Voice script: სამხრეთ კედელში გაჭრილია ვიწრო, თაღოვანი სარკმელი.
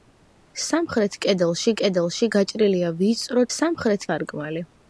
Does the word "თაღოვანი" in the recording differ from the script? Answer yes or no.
yes